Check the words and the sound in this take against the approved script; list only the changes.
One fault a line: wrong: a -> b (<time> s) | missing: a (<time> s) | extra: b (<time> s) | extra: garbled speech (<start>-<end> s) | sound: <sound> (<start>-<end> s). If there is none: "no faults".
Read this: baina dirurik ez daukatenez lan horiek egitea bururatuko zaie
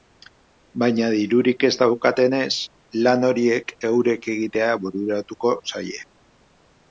extra: eurek (3.9 s)